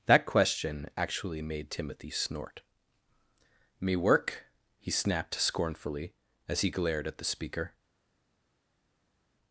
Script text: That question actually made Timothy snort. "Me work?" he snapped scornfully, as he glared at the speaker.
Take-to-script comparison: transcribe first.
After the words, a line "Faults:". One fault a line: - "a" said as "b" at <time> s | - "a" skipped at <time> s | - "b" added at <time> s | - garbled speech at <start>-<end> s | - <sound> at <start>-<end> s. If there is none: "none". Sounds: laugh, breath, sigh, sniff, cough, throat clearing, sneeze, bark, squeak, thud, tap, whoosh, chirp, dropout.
That question actually made Timothy snort. "Me work?" he snapped scornfully, as he glared at the speaker.
Faults:
none